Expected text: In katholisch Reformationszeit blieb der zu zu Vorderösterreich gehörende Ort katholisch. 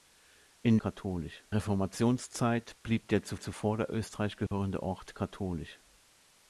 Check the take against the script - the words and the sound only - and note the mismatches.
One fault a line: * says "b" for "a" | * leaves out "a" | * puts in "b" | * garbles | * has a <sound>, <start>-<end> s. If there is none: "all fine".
* has a dropout, 4.5-4.5 s